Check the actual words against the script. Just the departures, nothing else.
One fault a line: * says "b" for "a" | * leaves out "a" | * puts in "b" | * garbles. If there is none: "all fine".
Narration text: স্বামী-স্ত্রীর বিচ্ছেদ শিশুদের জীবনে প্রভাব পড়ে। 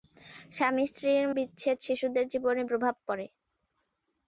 all fine